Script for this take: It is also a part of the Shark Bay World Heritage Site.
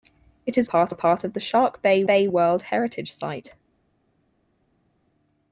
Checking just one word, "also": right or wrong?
wrong